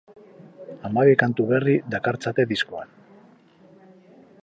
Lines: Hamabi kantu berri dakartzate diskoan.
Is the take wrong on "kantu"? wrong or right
right